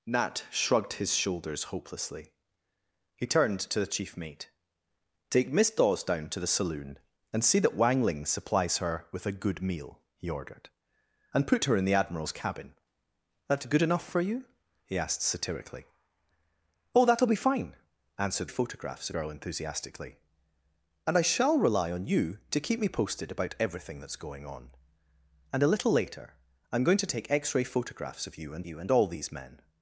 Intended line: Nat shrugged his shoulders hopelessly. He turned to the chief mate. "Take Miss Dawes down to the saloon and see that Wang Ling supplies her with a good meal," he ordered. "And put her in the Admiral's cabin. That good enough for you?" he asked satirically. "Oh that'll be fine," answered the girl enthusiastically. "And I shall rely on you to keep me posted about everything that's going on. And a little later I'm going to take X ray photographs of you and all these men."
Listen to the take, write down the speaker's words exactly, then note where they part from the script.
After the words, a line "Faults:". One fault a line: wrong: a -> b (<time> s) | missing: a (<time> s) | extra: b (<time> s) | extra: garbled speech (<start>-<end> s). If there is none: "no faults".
Nat shrugged his shoulders hopelessly. He turned to the chief mate. "Take Miss Dawes down to the saloon and see that Wang Ling supplies her with a good meal," he ordered. "And put her in the Admiral's cabin. That good enough for you?" he asked satirically. "Oh that'll be fine," answered photographs girl enthusiastically. "And I shall rely on you to keep me posted about everything that's going on. And a little later I'm going to take X ray photographs of you and you and all these men."
Faults:
wrong: the -> photographs (18.5 s)
extra: you and (28.6 s)